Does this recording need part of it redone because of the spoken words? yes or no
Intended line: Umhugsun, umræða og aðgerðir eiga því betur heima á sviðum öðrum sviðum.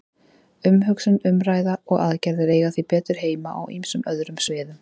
yes